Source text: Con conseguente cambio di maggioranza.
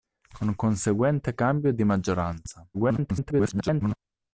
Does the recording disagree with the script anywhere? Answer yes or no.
yes